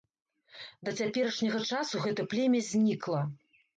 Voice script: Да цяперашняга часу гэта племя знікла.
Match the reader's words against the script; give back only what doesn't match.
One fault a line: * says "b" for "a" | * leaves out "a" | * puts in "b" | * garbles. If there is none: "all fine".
all fine